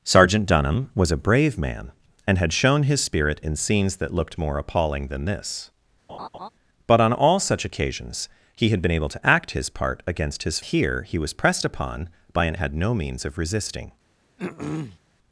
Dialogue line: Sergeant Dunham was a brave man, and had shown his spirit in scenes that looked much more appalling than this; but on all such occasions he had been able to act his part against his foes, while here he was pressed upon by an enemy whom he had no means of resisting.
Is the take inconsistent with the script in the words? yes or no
yes